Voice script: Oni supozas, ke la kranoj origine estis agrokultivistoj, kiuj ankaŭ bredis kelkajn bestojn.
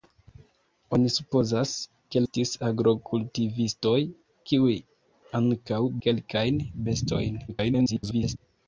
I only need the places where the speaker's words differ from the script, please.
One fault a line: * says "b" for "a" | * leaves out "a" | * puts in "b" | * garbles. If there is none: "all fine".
* leaves out "la kranoj origine"
* leaves out "bredis"
* garbles